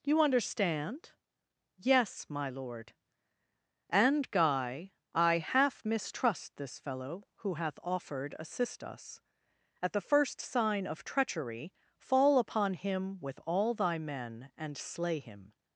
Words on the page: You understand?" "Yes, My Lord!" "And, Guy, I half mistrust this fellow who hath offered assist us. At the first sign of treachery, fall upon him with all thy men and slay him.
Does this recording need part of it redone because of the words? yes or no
no